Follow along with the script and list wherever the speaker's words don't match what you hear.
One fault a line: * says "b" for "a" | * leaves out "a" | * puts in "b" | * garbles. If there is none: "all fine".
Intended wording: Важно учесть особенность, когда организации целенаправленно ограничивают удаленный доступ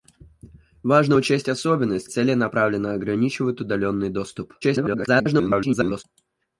* leaves out "когда организации"
* garbles